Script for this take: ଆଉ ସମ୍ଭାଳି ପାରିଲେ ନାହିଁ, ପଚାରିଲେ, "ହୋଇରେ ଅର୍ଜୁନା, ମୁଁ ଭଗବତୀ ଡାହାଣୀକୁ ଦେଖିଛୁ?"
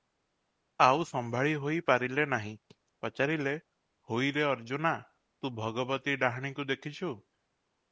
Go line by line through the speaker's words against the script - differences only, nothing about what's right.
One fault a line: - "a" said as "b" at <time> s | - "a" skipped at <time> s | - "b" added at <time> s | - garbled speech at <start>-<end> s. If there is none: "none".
- "ହୋଇ" added at 1.6 s
- "ମୁଁ" said as "ତୁ" at 5.4 s